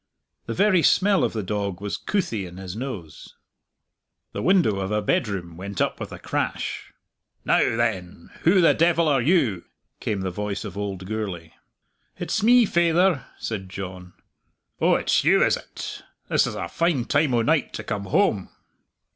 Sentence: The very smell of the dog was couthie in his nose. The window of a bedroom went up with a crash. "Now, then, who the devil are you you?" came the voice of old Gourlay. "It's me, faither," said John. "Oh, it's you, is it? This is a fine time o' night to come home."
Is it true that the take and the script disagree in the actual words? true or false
true